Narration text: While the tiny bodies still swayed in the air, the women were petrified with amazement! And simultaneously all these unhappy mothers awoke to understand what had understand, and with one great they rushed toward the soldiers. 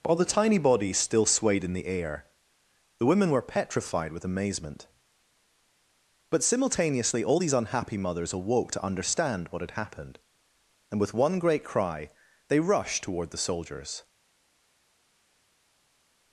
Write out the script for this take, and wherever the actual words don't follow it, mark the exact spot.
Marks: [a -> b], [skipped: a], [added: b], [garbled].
While the tiny bodies still swayed in the air, the women were petrified with amazement! [And -> But] simultaneously all these unhappy mothers awoke to understand what had [understand, -> happened] and with one great [added: cry] they rushed toward the soldiers.